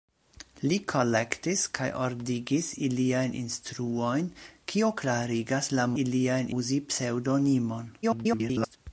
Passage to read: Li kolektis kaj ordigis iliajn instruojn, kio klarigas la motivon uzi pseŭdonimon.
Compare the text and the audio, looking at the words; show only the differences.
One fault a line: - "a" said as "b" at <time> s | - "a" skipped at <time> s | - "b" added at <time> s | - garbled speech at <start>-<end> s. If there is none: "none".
- "motivon" said as "iliajn" at 6.0 s
- garbled speech at 8.0-8.8 s